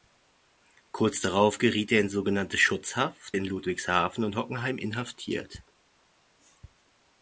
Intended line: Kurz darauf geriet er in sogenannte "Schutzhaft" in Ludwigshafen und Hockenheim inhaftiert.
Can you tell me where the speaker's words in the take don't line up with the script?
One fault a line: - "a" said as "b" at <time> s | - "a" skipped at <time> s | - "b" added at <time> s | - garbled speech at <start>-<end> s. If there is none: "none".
none